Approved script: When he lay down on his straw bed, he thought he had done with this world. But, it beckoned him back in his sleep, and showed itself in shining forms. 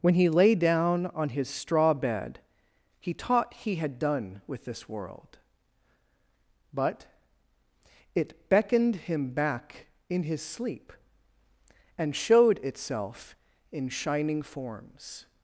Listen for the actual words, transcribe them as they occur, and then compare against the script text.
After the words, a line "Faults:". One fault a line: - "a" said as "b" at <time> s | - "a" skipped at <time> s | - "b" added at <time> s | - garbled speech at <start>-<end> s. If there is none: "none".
When he lay down on his straw bed, he taught he had done with this world. But, it beckoned him back in his sleep, and showed itself in shining forms.
Faults:
- "thought" said as "taught" at 3.1 s